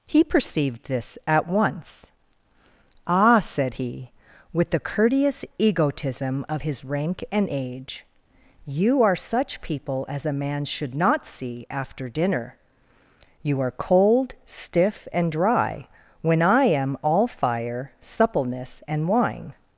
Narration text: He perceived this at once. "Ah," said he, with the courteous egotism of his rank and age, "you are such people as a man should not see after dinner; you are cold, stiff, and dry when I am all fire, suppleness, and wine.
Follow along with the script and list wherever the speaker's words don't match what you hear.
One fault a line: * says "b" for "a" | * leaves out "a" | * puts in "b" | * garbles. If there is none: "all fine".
all fine